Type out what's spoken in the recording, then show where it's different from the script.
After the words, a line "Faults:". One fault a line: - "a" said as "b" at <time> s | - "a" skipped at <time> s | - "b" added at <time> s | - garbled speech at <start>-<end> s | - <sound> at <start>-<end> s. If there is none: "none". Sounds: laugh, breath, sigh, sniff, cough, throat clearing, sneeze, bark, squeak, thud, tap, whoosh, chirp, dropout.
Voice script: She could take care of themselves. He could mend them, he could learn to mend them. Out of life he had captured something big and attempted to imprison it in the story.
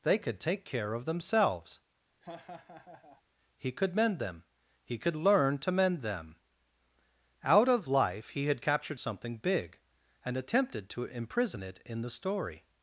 They could take care of themselves. He could mend them, he could learn to mend them. Out of life he had captured something big and attempted to imprison it in the story.
Faults:
- "She" said as "They" at 0.0 s
- laugh at 2.2-3.2 s